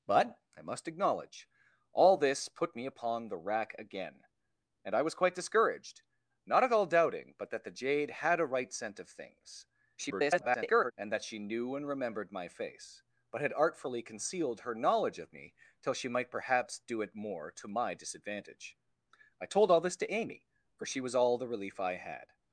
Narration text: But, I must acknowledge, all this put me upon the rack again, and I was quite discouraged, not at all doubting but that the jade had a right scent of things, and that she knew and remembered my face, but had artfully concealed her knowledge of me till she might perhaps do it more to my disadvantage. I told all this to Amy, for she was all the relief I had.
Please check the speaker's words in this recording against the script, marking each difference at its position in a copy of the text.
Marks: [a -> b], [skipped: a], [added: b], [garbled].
But, I must acknowledge, all this put me upon the rack again, and I was quite discouraged, not at all doubting but that the jade had a right scent of things, [garbled] and that she knew and remembered my face, but had artfully concealed her knowledge of me till she might perhaps do it more to my disadvantage. I told all this to Amy, for she was all the relief I had.